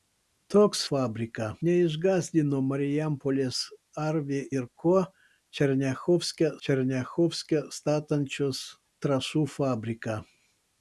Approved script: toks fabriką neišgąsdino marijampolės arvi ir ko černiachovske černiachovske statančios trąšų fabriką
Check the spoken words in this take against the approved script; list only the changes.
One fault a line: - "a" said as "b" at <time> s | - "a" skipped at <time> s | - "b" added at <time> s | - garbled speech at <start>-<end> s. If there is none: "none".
none